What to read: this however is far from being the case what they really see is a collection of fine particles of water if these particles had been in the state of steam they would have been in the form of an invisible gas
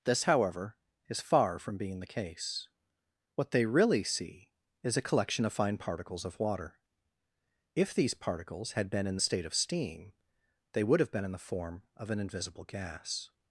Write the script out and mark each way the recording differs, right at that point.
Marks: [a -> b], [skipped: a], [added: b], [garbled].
this however is far from being the case what they really see is a collection of fine particles of water if these particles had been in the state of steam they would have been in the form of an invisible gas